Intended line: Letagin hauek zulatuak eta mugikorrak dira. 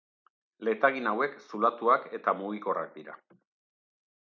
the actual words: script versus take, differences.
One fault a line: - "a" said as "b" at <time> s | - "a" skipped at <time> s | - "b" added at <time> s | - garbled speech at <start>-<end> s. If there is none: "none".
none